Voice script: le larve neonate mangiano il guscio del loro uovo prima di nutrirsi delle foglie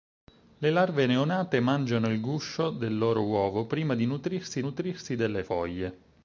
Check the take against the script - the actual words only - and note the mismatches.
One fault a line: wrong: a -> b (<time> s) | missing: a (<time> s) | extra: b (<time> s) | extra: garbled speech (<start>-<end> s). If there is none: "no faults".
extra: nutrirsi (4.6 s)